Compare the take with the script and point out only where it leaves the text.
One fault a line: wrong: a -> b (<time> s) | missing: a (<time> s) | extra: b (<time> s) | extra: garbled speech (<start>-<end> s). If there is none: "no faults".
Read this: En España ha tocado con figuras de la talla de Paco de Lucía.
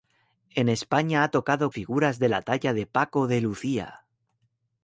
missing: con (1.7 s)